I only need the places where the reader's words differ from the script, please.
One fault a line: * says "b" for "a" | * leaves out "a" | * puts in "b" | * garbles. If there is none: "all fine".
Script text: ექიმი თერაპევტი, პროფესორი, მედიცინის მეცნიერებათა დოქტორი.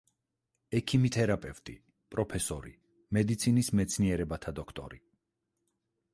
all fine